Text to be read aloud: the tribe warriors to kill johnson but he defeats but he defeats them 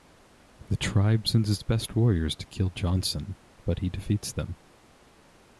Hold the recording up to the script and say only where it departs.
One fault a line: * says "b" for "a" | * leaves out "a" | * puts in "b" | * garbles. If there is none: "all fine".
* puts in "sends its best"
* leaves out "but he defeats"